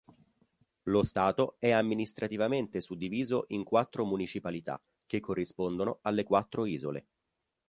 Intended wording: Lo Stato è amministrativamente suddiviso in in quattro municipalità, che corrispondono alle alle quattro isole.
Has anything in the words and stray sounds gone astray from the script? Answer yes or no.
yes